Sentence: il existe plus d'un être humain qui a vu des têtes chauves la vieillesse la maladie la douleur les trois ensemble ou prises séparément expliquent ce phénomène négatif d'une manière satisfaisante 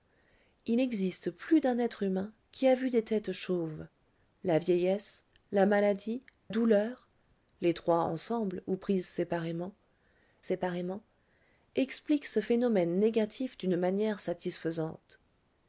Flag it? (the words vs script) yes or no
yes